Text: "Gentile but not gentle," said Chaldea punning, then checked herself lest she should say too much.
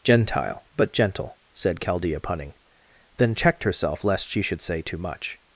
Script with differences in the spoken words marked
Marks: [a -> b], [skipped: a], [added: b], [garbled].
"Gentile but [skipped: not] gentle," said Chaldea punning, then checked herself lest she should say too much.